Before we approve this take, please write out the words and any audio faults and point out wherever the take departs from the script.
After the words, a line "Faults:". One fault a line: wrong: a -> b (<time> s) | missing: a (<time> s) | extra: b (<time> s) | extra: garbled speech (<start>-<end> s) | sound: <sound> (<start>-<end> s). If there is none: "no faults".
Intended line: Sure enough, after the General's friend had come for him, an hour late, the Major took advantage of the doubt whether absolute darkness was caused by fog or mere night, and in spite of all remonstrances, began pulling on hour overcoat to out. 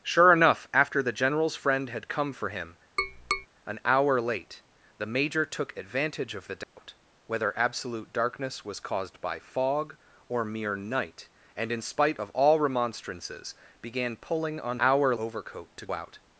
Sure enough, after the General's friend had come for him, an hour late, the Major took advantage of the doubt whether absolute darkness was caused by fog or mere night, and in spite of all remonstrances, began pulling on hour overcoat to out.
Faults:
sound: tap (3.0-3.5 s)
sound: dropout (6.6-6.8 s)